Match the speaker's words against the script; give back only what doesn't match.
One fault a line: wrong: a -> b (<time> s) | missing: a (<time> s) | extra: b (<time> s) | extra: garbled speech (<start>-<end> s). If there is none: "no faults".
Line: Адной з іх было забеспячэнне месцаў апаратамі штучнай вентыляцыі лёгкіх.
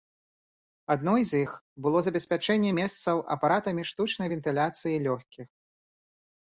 no faults